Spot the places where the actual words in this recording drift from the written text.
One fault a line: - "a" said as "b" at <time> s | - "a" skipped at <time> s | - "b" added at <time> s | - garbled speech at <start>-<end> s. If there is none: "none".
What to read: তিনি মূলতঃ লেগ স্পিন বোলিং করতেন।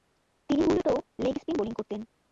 none